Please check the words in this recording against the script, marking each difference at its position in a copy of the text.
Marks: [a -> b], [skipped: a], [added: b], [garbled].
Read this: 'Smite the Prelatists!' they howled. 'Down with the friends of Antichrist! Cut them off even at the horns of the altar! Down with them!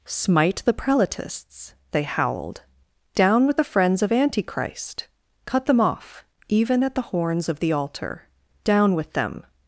'Smite the Prelatists!' they howled. 'Down with the friends of Antichrist! Cut them off even at the horns of the altar! Down with them!